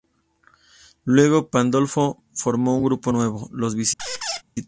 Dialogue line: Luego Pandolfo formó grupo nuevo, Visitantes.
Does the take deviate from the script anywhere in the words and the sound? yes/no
yes